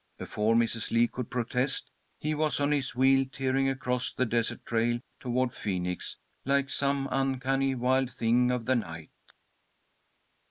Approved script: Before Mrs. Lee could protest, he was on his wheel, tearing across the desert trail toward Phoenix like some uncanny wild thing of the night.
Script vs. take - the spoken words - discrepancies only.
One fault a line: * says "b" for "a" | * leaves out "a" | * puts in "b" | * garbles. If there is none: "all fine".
all fine